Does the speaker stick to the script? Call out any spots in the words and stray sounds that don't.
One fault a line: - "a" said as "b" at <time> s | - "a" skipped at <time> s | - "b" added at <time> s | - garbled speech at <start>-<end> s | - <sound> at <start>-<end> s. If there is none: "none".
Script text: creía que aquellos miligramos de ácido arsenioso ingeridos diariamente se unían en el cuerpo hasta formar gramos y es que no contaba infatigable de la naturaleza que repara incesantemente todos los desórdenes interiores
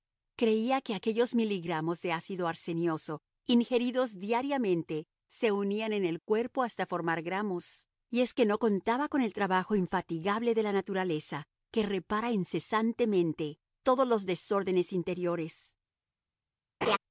- "con el trabajo" added at 9.1 s
- laugh at 16.8-17.0 s